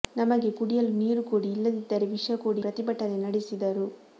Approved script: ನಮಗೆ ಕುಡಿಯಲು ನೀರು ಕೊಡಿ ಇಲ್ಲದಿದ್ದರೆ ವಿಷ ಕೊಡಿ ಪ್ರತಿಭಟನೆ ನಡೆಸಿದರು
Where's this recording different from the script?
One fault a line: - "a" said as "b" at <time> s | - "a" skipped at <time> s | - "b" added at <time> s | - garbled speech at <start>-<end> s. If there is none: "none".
none